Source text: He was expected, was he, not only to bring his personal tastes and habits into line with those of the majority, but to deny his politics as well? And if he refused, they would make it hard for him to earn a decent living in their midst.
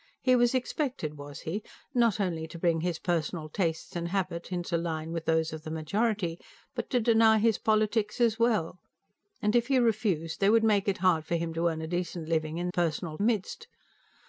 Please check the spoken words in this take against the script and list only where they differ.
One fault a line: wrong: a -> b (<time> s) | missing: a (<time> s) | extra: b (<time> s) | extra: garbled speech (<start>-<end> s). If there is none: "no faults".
wrong: their -> personal (12.7 s)